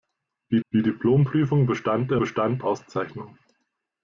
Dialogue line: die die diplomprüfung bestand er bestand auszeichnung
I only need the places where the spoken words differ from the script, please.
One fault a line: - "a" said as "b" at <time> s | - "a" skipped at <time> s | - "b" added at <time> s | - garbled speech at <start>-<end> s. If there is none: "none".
none